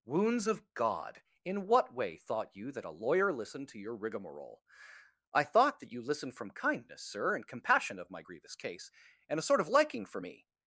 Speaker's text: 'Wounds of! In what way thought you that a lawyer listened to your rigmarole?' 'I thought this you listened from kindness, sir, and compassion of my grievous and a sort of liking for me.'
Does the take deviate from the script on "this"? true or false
true